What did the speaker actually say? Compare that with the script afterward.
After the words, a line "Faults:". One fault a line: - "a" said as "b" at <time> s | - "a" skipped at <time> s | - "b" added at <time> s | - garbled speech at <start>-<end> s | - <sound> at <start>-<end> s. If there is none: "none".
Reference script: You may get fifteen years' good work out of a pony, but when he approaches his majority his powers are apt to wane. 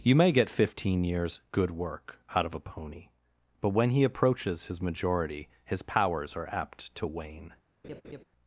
You may get fifteen years' good work out of a pony, but when he approaches his majority his powers are apt to wane.
Faults:
- laugh at 7.8-8.2 s